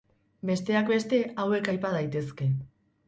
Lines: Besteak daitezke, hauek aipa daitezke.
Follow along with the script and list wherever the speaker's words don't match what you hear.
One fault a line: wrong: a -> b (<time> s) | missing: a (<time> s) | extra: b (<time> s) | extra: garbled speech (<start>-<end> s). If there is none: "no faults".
wrong: daitezke -> beste (0.9 s)